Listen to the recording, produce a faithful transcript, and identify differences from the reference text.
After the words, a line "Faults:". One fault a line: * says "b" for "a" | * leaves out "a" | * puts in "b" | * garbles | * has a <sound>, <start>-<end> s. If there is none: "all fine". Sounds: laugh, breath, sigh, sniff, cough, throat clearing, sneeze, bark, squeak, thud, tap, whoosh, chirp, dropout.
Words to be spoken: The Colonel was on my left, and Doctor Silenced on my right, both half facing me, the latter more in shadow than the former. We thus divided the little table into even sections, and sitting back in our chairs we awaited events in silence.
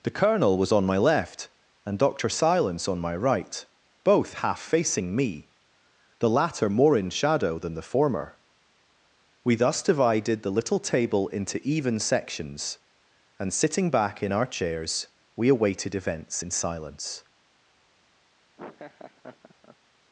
The Colonel was on my left, and Doctor Silence on my right, both half facing me, the latter more in shadow than the former. We thus divided the little table into even sections, and sitting back in our chairs we awaited events in silence.
Faults:
* says "Silence" for "Silenced"
* has a laugh, 18.6-19.8 s